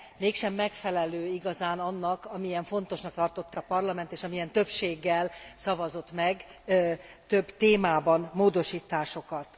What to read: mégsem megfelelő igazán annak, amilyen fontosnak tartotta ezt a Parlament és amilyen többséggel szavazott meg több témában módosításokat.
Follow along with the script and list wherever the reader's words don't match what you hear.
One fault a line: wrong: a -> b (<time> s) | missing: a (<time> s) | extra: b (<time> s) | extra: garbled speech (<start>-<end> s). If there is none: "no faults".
missing: ezt (3.6 s)